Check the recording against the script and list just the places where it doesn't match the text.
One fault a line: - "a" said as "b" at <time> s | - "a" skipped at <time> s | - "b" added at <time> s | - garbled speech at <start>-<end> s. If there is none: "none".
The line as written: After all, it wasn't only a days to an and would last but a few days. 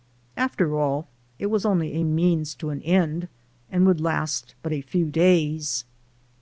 - "wasn't" said as "was" at 1.5 s
- "days" said as "means" at 2.0 s
- "end" added at 2.8 s